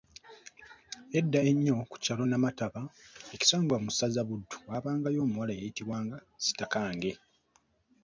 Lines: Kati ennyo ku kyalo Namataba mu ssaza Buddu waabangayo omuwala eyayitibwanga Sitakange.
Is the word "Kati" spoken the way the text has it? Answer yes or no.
no